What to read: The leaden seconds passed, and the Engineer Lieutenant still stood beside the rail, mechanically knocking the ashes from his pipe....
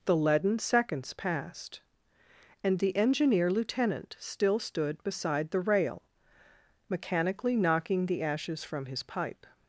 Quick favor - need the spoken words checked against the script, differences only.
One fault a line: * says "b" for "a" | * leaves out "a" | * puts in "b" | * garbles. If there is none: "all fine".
all fine